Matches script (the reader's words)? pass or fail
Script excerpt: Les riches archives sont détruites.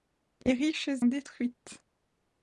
fail